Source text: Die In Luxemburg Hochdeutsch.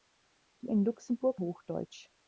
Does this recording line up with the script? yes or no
yes